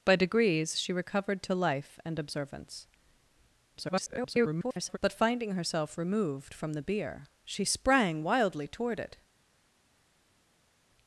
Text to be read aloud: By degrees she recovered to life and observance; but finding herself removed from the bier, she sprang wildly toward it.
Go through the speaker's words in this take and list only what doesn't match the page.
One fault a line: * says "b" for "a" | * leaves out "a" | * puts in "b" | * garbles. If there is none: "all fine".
* garbles